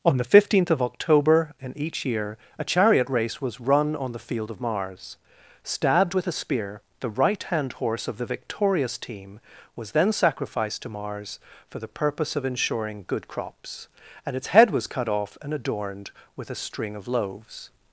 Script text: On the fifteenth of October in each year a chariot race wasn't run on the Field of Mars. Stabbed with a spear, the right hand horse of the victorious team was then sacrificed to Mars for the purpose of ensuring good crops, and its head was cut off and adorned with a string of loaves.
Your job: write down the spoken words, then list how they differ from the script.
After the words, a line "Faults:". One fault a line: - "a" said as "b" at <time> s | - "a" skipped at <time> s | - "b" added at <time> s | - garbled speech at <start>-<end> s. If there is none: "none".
On the fifteenth of October in each year a chariot race was run on the Field of Mars. Stabbed with a spear, the right hand horse of the victorious team was then sacrificed to Mars for the purpose of ensuring good crops, and its head was cut off and adorned with a string of loaves.
Faults:
- "wasn't" said as "was" at 3.4 s